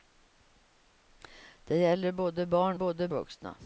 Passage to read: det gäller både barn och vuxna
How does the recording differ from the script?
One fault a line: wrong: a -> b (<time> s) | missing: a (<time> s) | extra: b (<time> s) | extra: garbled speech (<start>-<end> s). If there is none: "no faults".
wrong: och -> både (2.7 s)